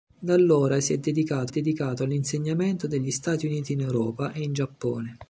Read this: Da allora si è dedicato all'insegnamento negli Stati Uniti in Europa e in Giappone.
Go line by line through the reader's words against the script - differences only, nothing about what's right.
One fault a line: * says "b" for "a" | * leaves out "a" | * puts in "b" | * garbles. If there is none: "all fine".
* puts in "dedicato"